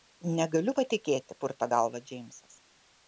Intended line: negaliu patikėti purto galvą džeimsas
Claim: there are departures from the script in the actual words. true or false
false